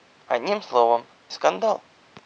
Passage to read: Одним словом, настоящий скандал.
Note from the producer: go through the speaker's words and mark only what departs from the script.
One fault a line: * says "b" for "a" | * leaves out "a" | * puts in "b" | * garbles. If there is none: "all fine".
* leaves out "настоящий"